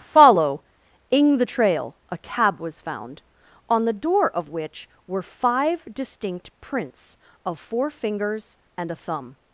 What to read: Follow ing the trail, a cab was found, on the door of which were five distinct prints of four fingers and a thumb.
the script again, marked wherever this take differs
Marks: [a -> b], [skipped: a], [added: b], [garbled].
Follow ing the trail, a cab was found, on the door of which were five distinct prints of four fingers and a thumb.